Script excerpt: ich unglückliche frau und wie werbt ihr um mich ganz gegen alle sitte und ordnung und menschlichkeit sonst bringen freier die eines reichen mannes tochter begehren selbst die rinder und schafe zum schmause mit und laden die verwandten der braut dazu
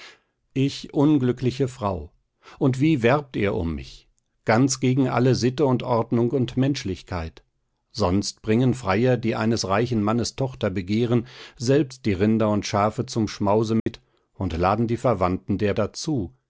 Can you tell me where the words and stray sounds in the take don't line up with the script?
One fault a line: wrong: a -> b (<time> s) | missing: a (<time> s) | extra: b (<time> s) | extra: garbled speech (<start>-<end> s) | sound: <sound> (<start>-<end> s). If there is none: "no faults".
sound: dropout (13.8-13.9 s)
missing: braut (15.7 s)